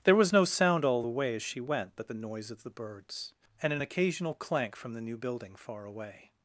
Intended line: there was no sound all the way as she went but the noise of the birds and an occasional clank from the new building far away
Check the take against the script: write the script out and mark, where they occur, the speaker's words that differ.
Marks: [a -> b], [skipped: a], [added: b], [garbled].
there was no sound all the way as she went but the noise of the birds and an occasional clank from the new building far away